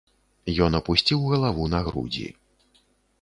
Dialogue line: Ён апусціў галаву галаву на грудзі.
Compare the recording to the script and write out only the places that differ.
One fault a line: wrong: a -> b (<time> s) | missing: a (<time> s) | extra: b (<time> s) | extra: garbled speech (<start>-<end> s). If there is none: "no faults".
missing: галаву (1.7 s)